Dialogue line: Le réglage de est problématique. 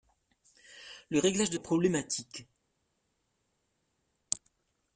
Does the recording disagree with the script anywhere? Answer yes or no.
no